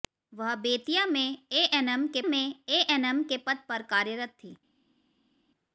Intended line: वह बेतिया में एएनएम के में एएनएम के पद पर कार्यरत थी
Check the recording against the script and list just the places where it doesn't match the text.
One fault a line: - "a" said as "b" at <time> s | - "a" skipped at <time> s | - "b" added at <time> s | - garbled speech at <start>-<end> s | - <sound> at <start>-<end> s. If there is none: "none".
none